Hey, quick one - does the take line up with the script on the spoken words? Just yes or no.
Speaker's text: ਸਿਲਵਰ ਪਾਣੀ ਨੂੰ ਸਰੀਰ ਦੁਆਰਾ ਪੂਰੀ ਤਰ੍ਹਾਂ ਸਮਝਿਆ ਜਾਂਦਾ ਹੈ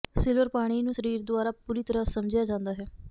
yes